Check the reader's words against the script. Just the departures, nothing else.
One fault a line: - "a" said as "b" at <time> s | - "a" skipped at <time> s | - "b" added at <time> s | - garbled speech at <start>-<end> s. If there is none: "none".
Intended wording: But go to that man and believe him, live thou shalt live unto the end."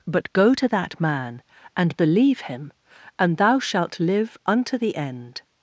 - "live" said as "and" at 3.2 s